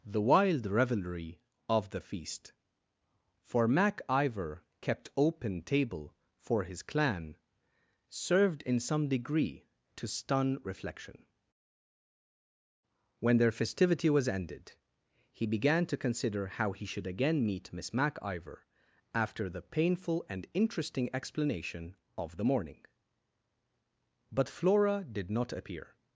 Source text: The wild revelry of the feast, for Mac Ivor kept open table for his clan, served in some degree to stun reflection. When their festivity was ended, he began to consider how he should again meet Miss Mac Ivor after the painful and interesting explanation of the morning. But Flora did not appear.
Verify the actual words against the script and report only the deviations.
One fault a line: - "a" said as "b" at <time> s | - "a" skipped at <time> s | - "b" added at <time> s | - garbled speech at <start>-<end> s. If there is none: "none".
none